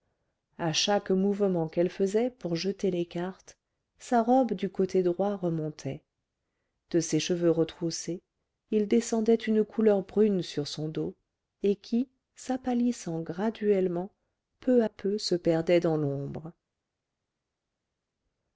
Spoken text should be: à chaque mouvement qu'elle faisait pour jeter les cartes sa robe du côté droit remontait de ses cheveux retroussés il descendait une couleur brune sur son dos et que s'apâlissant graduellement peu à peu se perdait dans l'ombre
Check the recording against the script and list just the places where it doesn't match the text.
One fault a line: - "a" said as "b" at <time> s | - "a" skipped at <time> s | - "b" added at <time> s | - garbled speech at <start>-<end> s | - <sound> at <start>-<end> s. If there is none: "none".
- "que" said as "qui" at 11.8 s